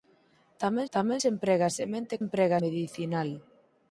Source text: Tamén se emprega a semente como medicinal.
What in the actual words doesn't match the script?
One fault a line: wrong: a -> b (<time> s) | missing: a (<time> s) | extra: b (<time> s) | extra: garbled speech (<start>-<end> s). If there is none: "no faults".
extra: tamén (0.9 s)
wrong: como -> emprega (2.2 s)